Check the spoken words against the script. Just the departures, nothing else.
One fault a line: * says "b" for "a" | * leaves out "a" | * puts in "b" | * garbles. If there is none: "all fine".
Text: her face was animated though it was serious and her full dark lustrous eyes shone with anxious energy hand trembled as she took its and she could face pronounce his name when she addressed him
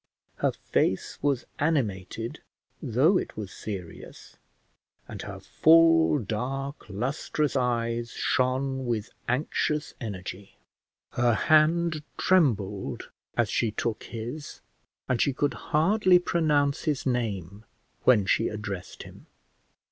* puts in "her"
* says "his" for "its"
* says "hardly" for "face"